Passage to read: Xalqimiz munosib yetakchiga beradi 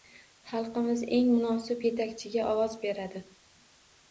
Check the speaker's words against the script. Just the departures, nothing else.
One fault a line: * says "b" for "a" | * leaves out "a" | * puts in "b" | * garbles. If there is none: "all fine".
* puts in "eng"
* puts in "ovoz"